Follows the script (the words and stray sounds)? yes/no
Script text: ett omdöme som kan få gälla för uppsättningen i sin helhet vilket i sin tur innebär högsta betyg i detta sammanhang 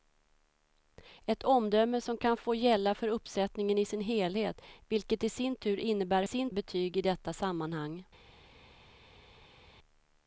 no